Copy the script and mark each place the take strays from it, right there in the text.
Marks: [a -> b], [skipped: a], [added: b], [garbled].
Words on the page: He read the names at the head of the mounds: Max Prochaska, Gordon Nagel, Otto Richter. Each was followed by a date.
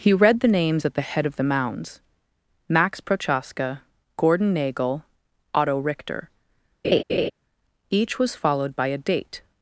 He read the names at the head of the mounds: Max Prochaska, Gordon Nagel, Otto Richter. Each was followed by a date.